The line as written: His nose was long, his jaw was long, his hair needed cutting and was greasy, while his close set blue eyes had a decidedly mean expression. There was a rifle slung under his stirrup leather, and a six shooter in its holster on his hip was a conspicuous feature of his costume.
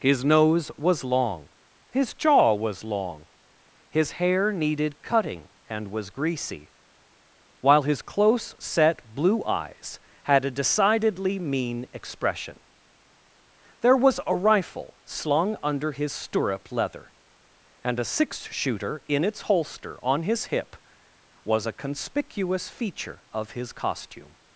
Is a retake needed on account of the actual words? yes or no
no